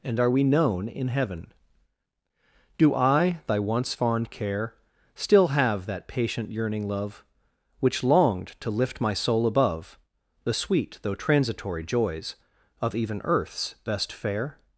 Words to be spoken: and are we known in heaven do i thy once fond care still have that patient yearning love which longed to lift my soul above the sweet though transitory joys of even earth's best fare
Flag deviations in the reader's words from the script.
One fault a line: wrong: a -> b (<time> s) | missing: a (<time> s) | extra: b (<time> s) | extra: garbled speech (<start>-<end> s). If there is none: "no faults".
no faults